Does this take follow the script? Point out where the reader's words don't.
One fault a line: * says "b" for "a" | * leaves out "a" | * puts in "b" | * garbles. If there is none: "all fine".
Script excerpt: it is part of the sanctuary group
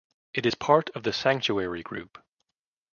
all fine